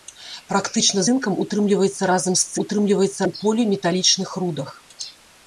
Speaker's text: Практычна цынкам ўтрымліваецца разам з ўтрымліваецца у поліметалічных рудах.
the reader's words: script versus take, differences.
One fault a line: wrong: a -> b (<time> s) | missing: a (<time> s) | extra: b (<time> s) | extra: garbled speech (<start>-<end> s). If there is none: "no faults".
no faults